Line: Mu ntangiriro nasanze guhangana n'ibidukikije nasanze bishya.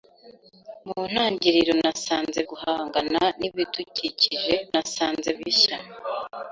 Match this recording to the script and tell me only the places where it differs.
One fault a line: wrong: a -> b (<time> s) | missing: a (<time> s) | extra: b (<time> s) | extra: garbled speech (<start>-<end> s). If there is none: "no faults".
no faults